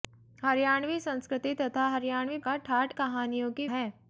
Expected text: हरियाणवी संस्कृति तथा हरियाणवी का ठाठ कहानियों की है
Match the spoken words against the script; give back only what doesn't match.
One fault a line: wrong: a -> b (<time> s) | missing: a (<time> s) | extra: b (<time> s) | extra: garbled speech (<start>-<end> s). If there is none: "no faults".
no faults